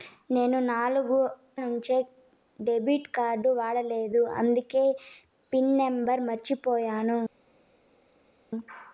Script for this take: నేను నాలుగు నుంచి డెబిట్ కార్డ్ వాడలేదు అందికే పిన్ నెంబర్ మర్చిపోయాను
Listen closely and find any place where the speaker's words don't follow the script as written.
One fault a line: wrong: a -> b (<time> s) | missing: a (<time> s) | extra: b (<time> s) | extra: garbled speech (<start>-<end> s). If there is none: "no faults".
no faults